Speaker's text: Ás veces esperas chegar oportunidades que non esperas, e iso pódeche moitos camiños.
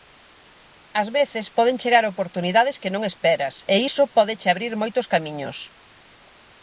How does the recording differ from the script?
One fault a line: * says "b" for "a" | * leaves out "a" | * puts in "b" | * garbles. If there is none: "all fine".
* says "poden" for "esperas"
* puts in "abrir"